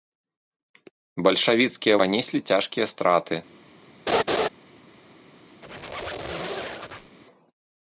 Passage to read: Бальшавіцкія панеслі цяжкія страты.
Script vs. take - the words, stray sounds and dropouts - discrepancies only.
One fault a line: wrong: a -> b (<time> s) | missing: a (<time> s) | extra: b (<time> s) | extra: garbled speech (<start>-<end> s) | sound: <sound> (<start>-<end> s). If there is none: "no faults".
sound: laugh (4.1-4.5 s)
sound: squeak (5.6-7.2 s)